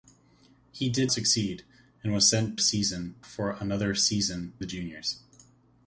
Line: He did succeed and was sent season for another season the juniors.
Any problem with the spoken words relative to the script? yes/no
no